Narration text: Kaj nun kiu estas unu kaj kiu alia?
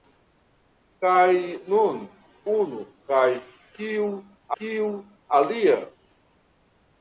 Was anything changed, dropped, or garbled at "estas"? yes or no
yes